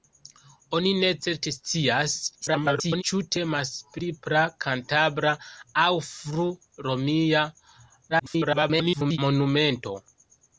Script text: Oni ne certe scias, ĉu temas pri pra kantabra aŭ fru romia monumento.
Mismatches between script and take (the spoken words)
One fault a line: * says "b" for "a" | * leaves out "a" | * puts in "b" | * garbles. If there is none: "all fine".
* garbles
* garbles